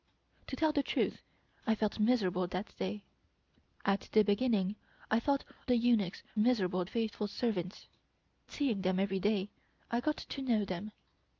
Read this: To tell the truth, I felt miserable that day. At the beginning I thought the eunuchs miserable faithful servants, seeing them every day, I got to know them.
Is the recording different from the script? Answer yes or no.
no